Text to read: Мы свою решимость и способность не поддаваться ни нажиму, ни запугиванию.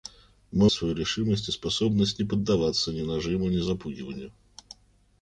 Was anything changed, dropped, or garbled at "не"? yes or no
no